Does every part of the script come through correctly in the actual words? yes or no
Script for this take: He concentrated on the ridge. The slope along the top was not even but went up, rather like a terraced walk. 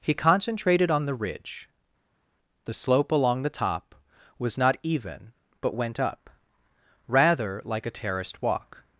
yes